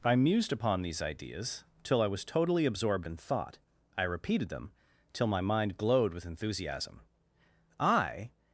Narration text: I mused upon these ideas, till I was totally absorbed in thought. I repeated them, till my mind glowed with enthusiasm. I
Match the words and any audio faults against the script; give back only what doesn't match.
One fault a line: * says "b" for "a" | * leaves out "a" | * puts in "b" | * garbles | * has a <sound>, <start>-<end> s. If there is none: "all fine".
all fine